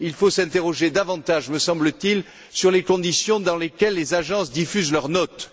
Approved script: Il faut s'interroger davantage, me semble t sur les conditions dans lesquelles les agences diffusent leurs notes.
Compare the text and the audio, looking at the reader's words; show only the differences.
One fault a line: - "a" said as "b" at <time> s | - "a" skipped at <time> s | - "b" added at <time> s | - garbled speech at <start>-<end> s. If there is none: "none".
- "il" added at 2.1 s